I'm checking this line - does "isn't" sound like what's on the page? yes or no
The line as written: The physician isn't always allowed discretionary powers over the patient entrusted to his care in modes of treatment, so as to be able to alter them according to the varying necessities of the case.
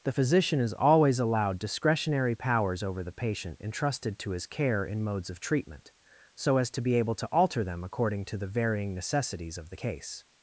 no